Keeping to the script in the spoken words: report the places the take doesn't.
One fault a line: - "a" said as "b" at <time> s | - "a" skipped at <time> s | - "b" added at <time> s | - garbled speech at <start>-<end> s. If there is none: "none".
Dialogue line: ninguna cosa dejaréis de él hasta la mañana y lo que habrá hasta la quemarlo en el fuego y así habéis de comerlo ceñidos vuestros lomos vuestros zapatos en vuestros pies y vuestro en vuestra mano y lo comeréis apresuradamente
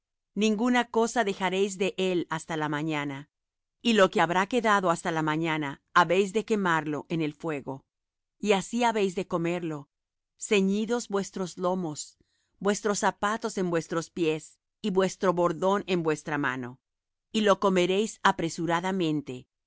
- "quedado" added at 4.5 s
- "mañana habéis de" added at 5.2 s
- "bordón" added at 15.3 s